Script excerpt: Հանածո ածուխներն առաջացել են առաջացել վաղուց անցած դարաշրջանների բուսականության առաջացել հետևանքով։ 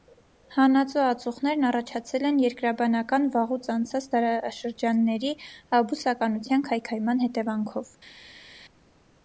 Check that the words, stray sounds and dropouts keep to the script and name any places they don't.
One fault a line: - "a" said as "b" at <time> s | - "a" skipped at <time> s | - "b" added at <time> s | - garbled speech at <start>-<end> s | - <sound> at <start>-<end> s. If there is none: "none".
- "առաջացել" said as "երկրաբանական" at 2.5 s
- "առաջացել" said as "քայքայման" at 6.7 s